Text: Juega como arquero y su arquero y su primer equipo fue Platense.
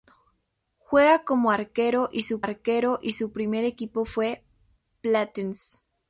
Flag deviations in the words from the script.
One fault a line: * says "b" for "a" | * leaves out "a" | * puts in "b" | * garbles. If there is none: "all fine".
all fine